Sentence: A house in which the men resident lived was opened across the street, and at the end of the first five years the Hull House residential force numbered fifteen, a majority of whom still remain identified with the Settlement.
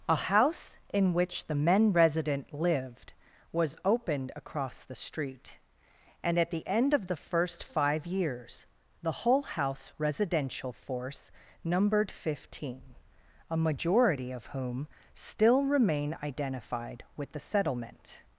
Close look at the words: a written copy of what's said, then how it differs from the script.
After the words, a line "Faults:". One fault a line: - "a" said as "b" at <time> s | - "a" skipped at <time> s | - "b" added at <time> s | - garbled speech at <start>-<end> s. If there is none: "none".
A house in which the men resident lived was opened across the street, and at the end of the first five years the Hull House residential force numbered fifteen, a majority of whom still remain identified with the Settlement.
Faults:
none